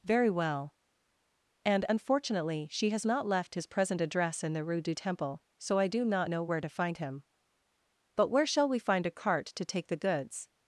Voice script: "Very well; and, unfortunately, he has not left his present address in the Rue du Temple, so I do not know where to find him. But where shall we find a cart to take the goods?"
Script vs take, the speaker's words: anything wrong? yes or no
yes